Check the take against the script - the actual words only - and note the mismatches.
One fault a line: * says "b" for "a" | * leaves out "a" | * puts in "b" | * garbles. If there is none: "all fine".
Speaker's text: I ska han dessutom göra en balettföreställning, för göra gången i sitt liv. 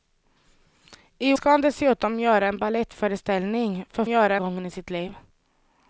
all fine